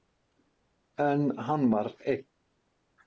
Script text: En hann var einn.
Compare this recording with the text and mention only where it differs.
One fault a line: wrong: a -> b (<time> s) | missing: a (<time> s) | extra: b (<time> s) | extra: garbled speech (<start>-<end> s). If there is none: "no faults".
no faults